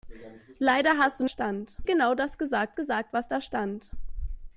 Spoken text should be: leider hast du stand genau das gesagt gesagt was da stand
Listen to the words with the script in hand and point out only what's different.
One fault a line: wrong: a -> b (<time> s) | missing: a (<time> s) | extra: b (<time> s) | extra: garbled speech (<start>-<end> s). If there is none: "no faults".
no faults